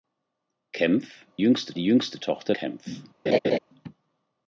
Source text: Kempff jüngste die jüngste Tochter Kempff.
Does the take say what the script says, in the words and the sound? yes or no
no